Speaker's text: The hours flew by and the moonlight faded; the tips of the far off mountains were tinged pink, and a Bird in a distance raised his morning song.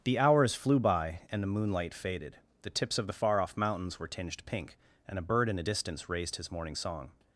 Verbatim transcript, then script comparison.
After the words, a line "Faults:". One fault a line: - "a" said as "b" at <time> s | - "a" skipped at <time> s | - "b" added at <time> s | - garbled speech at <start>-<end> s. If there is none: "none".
The hours flew by and the moonlight faded; the tips of the far off mountains were tinged pink, and a Bird in a distance raised his morning song.
Faults:
none